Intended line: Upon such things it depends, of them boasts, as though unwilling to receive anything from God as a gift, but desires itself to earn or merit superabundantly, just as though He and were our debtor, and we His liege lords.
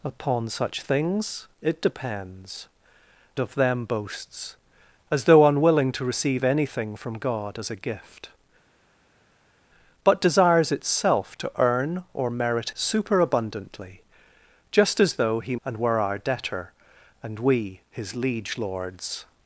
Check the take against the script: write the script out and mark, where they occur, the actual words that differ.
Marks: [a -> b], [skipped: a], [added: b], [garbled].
Upon such things it depends, of them boasts, as though unwilling to receive anything from God as a gift, but desires itself to earn or merit superabundantly, just as though He and were our debtor, and we His liege lords.